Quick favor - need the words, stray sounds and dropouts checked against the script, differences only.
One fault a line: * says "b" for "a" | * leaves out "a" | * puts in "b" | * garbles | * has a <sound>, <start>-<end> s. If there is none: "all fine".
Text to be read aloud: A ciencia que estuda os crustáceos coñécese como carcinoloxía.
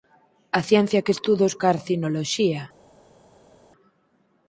* leaves out "crustáceos coñécese como"